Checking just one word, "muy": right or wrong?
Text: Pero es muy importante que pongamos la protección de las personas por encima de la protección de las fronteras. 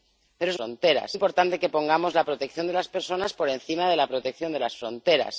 wrong